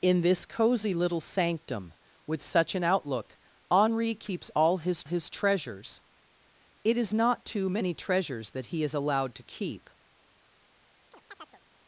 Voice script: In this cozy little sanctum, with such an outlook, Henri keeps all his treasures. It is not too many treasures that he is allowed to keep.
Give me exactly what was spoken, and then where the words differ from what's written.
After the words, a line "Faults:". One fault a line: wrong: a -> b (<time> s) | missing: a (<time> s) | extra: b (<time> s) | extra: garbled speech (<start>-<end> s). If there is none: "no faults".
In this cozy little sanctum, with such an outlook, Henri keeps all his his treasures. It is not too many treasures that he is allowed to keep.
Faults:
extra: his (5.0 s)